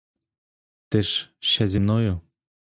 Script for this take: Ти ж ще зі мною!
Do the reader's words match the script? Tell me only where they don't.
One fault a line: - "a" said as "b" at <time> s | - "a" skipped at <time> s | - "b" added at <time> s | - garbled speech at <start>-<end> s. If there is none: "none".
none